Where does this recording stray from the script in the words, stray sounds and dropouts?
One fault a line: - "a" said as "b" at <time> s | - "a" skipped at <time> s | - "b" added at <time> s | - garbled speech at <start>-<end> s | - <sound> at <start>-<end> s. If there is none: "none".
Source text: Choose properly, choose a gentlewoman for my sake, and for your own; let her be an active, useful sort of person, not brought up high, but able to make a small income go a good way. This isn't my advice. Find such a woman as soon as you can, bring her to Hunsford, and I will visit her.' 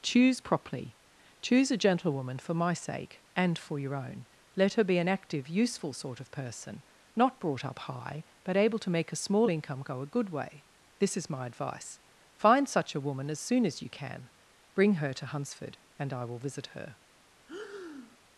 - "isn't" said as "is" at 11.2 s
- breath at 17.5-18.2 s